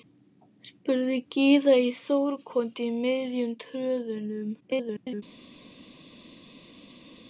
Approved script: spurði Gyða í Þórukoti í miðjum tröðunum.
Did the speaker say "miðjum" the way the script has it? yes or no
yes